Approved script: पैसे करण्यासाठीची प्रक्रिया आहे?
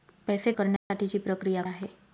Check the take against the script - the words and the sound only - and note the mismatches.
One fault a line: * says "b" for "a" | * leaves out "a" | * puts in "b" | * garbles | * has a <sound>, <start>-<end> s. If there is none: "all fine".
* has a dropout, 0.8-0.9 s